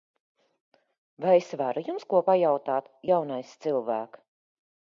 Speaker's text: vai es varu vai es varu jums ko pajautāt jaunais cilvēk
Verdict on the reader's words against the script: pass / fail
fail